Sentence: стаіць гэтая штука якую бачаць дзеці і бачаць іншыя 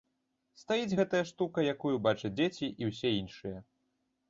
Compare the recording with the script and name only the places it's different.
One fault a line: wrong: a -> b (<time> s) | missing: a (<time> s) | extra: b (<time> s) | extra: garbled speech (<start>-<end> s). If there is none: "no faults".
wrong: бачаць -> ўсе (2.9 s)